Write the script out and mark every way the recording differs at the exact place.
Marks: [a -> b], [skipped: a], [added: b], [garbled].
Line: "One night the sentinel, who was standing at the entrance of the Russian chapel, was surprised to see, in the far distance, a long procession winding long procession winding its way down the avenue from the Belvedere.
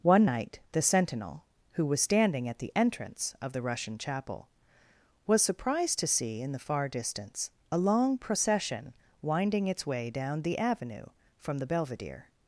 "One night the sentinel, who was standing at the entrance of the Russian chapel, was surprised to see, in the far distance, a long procession winding [skipped: long procession winding] its way down the avenue from the Belvedere.